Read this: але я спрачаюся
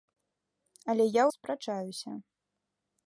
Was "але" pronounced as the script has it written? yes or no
yes